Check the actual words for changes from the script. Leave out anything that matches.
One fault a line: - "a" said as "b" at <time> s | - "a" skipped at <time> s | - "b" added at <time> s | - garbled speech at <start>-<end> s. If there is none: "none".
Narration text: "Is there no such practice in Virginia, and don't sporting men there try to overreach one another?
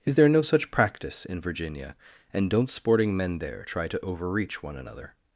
none